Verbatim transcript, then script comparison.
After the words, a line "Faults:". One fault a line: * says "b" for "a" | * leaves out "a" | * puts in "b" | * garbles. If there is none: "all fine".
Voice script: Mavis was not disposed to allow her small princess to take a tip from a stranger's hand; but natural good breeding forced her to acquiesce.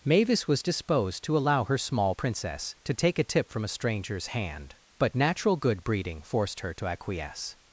Mavis was disposed to allow her small princess to take a tip from a stranger's hand; but natural good breeding forced her to acquiesce.
Faults:
* leaves out "not"